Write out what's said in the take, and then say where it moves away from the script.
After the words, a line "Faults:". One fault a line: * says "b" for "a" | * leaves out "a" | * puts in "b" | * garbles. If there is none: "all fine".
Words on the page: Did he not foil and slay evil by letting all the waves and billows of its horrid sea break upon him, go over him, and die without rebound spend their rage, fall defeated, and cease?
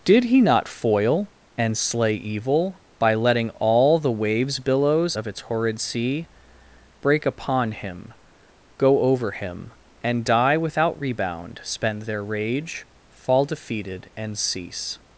Did he not foil and slay evil by letting all the waves billows of its horrid sea break upon him, go over him, and die without rebound spend their rage, fall defeated, and cease?
Faults:
* leaves out "and"